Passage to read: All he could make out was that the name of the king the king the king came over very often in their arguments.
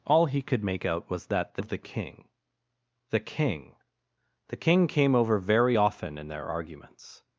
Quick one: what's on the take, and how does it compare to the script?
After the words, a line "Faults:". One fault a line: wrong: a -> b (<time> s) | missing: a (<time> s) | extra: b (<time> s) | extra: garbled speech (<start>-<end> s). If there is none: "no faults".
All he could make out was that the of the king the king the king came over very often in their arguments.
Faults:
missing: name (1.6 s)